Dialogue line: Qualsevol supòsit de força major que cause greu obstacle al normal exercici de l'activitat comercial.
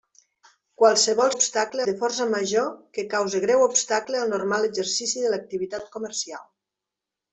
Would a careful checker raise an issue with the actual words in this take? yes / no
yes